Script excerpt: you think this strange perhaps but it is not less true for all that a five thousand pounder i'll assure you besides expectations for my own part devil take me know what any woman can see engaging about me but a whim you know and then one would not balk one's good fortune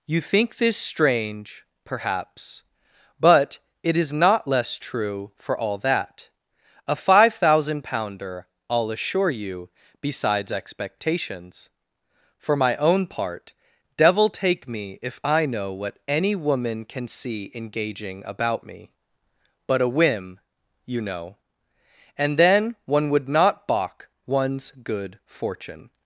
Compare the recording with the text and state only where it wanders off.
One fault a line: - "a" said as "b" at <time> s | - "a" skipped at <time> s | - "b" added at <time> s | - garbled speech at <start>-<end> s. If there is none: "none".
- "if i" added at 15.0 s